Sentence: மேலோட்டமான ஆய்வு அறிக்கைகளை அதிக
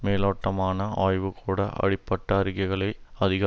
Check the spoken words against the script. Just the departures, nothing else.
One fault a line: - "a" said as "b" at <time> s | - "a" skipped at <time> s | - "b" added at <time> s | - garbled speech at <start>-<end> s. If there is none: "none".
- "கூட அப்படிப்பட்ட" added at 1.4 s